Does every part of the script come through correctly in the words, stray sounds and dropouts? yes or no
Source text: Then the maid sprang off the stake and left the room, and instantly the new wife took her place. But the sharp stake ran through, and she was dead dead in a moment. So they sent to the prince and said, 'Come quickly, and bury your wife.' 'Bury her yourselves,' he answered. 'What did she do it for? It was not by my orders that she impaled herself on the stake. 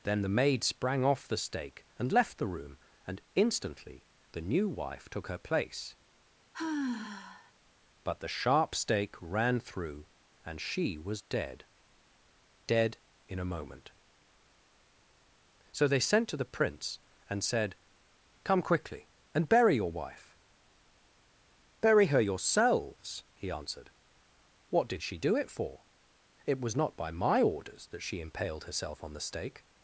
no